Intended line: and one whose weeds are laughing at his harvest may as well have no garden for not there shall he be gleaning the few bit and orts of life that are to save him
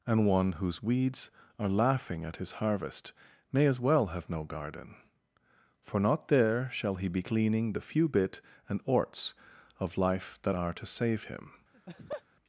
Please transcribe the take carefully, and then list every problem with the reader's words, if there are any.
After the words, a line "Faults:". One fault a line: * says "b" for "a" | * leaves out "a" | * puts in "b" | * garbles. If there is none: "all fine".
and one whose weeds are laughing at his harvest may as well have no garden for not there shall he be gleaning the few bit and orts of life that are to save him
Faults:
all fine